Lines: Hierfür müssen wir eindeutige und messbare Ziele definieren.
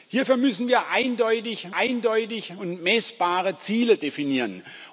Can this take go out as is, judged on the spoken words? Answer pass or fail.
fail